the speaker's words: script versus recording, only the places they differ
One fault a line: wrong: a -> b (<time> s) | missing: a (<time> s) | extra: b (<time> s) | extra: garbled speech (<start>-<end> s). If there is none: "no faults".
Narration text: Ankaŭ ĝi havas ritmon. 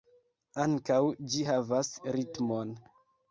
no faults